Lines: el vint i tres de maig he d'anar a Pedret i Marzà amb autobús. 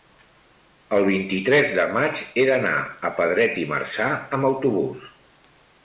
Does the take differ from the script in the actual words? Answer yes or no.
no